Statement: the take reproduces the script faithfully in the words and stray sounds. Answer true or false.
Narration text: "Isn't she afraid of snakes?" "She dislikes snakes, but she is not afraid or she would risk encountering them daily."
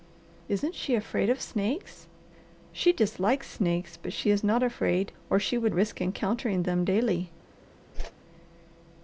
false